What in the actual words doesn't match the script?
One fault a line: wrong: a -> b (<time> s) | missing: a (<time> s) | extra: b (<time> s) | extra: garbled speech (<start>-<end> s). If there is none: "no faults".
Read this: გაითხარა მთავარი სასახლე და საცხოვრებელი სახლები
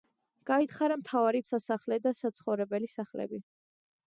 no faults